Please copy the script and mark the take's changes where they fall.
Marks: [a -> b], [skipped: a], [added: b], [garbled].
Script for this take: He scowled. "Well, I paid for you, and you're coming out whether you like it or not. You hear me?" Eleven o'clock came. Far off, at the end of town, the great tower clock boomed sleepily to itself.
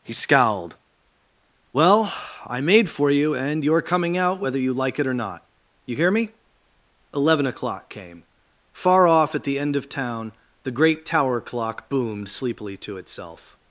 He scowled. "Well, I [paid -> made] for you, and you're coming out whether you like it or not. You hear me?" Eleven o'clock came. Far off, at the end of town, the great tower clock boomed sleepily to itself.